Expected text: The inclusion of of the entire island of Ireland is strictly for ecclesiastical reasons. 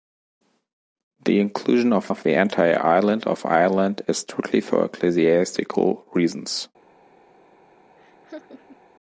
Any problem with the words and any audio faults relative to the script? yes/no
yes